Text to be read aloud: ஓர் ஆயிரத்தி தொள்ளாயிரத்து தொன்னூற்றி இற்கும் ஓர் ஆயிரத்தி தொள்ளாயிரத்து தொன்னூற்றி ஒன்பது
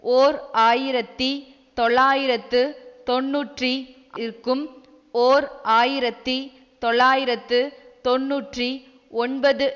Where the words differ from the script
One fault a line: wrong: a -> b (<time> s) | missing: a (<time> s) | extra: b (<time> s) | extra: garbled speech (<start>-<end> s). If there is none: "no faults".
no faults